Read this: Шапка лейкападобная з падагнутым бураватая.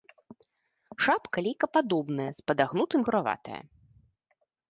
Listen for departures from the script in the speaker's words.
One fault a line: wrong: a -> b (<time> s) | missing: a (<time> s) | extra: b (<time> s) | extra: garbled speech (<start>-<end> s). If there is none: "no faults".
no faults